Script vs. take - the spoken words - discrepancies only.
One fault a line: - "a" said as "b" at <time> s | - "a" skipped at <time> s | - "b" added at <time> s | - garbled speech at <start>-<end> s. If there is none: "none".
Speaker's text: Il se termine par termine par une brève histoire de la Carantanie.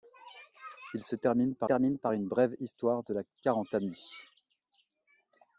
none